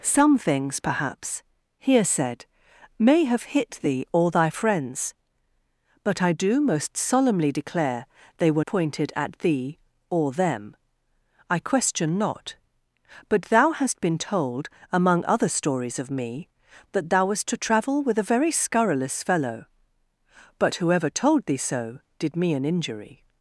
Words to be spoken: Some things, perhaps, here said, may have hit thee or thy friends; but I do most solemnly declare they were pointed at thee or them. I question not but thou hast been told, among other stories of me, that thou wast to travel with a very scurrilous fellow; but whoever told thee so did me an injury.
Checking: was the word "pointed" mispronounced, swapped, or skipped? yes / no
no